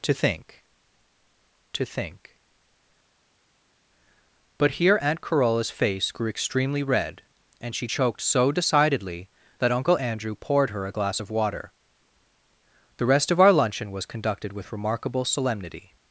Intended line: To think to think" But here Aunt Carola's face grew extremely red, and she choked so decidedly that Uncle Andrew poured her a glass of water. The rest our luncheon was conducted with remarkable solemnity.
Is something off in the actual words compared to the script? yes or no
yes